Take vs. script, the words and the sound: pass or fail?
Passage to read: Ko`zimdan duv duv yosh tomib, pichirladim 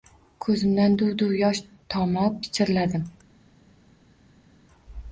pass